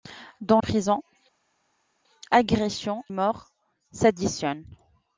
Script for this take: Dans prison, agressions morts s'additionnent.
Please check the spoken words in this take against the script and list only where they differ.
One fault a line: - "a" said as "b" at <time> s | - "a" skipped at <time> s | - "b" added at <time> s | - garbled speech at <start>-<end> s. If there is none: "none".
none